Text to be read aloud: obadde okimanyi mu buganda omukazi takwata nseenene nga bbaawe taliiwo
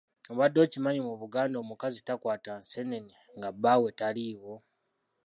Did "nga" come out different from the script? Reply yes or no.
no